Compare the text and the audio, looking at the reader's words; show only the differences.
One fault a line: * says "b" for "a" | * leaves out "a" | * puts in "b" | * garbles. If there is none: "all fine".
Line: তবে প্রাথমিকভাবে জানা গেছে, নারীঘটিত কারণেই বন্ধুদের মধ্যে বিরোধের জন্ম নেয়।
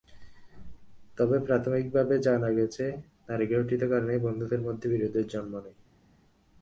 all fine